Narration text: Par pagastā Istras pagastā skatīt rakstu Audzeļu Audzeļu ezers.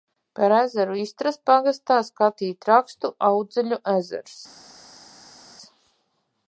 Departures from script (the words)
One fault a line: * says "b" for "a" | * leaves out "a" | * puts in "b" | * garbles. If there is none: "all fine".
* says "ezeru" for "pagastā"
* leaves out "Audzeļu"